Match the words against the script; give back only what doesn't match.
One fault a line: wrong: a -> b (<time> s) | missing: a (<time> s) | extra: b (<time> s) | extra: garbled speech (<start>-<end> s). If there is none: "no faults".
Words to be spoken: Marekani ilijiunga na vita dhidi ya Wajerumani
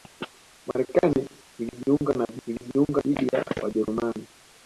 wrong: vita -> ilijiunga (2.5 s)